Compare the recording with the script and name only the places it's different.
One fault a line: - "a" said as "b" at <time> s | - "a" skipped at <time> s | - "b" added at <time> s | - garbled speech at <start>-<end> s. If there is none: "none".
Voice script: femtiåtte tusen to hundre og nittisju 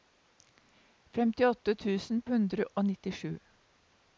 - "to" skipped at 2.2 s